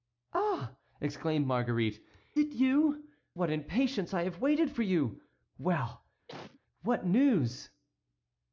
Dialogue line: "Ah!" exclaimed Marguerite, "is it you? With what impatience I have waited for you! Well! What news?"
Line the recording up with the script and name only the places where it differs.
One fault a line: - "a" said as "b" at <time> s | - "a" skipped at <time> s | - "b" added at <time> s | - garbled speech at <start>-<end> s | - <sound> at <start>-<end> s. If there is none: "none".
- "is" skipped at 2.0 s
- "With" skipped at 3.1 s
- cough at 6.3-6.6 s